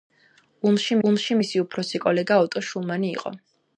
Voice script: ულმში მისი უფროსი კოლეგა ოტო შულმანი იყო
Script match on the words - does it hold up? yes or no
no